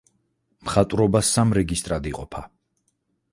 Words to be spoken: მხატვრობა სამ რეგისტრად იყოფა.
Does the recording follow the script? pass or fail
pass